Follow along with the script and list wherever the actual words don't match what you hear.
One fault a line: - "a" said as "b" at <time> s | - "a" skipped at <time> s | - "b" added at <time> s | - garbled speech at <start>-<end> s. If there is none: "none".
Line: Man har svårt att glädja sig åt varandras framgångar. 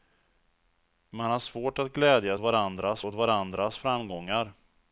- "sig" said as "varandras" at 2.4 s